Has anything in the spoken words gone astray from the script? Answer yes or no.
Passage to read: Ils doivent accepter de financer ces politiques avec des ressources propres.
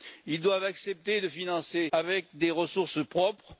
yes